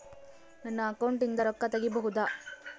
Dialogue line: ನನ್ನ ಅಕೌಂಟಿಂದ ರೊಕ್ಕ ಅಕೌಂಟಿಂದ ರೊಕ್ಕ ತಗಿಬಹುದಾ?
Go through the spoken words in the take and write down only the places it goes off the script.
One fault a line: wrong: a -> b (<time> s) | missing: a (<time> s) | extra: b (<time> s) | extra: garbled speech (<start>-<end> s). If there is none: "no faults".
missing: ಅಕೌಂಟಿಂದ ರೊಕ್ಕ (1.6 s)